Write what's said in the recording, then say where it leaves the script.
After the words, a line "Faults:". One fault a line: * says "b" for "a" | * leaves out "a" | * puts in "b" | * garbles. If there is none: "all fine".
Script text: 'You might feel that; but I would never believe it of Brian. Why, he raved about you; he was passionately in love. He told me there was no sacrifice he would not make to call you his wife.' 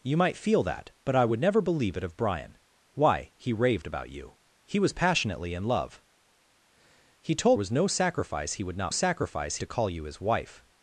'You might feel that; but I would never believe it of Brian. Why, he raved about you; he was passionately in love. He told was no sacrifice he would not sacrifice to call you his wife.'
Faults:
* leaves out "me there"
* says "sacrifice" for "make"